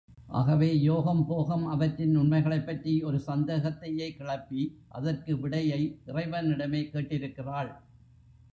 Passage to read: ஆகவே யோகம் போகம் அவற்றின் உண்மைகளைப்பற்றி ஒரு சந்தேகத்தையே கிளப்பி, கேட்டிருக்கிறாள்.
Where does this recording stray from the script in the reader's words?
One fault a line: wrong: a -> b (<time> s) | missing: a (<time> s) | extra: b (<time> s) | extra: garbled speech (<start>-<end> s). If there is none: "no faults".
extra: அதற்கு விடையை இறைவனிடமே (4.9 s)